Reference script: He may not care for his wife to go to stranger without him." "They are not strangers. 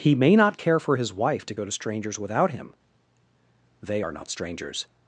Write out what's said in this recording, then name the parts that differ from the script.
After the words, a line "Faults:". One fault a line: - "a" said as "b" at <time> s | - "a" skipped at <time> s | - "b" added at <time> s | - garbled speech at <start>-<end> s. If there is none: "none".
He may not care for his wife to go to strangers without him." "They are not strangers.
Faults:
- "stranger" said as "strangers" at 1.7 s